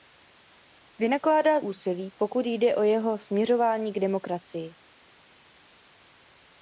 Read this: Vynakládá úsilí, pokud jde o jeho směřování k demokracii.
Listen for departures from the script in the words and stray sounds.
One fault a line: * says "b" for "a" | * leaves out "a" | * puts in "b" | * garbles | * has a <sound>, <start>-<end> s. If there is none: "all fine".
all fine